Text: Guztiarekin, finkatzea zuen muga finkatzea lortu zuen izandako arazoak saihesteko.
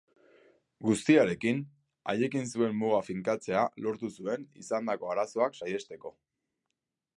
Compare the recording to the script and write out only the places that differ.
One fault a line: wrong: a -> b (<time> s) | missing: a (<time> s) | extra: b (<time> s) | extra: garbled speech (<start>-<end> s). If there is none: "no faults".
wrong: finkatzea -> haiekin (2.1 s)